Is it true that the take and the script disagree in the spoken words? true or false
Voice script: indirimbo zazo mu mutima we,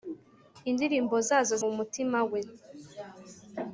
false